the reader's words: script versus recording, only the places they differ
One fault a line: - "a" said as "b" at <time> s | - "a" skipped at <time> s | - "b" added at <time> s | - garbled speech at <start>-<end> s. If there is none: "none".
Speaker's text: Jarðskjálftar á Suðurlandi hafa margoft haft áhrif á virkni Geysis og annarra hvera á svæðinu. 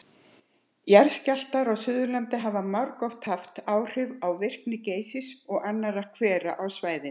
none